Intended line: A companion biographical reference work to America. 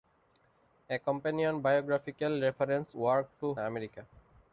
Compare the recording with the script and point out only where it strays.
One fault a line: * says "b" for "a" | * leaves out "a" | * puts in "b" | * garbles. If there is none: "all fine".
all fine